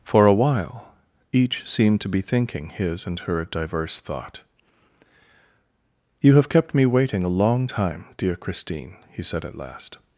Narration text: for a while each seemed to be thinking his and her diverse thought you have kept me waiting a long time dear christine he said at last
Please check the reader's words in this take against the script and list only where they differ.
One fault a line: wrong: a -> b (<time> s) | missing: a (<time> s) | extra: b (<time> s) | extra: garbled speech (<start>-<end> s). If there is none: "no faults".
no faults